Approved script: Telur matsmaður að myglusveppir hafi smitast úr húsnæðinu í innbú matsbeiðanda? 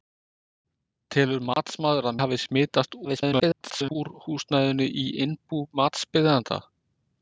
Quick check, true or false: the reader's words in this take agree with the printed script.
false